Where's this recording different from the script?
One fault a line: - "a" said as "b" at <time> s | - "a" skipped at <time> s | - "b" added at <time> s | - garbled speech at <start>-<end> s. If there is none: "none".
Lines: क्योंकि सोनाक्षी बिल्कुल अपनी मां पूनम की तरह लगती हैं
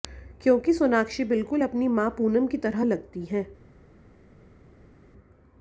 none